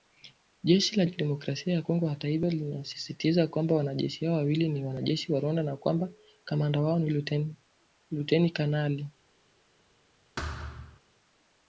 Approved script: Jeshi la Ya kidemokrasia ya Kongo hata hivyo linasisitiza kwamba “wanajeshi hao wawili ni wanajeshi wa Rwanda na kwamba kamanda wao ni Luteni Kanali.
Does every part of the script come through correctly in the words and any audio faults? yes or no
no